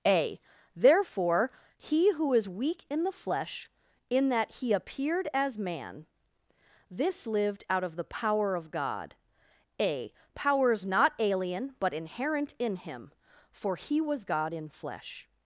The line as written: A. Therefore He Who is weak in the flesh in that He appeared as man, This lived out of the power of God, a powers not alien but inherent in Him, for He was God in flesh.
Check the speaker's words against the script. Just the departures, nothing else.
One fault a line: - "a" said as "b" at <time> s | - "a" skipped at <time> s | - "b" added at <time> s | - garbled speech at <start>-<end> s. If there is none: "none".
none